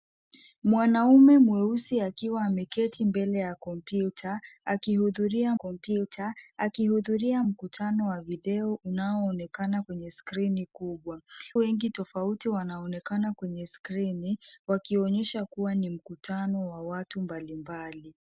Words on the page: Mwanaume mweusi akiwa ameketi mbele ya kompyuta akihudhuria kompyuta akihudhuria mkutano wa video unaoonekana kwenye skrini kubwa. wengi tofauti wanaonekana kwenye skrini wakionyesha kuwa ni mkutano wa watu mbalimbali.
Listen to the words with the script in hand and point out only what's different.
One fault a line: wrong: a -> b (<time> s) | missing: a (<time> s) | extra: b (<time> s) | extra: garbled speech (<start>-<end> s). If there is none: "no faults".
no faults